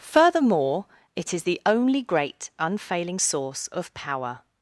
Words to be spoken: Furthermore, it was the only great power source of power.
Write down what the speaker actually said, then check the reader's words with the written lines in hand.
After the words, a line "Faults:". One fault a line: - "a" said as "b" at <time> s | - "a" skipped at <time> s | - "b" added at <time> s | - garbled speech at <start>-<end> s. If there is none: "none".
Furthermore, it is the only great unfailing source of power.
Faults:
- "was" said as "is" at 1.3 s
- "power" said as "unfailing" at 2.6 s